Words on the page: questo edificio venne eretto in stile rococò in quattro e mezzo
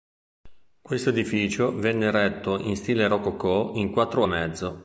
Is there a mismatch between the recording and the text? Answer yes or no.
no